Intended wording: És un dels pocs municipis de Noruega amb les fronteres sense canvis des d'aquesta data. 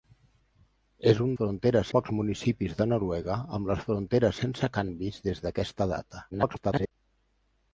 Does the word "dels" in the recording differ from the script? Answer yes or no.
yes